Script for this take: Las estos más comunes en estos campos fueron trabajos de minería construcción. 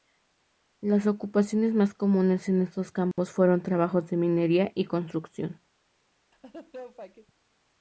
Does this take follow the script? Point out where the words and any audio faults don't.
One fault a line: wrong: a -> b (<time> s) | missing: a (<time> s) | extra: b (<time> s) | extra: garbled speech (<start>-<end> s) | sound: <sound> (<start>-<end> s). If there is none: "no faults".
wrong: estos -> ocupaciones (1.1 s)
sound: dropout (3.1-3.2 s)
extra: y (4.7 s)
sound: laugh (6.3-7.3 s)